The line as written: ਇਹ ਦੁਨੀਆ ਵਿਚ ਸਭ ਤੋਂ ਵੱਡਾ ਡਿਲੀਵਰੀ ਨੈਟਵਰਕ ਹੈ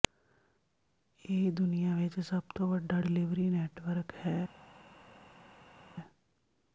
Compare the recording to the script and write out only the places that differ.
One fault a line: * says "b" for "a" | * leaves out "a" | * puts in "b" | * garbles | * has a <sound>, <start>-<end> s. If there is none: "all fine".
all fine